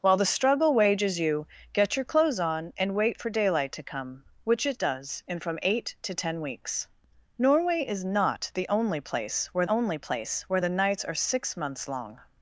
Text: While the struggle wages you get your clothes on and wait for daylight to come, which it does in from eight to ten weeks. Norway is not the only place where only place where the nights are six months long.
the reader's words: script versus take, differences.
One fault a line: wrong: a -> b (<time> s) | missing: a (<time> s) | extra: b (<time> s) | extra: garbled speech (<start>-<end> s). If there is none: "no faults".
no faults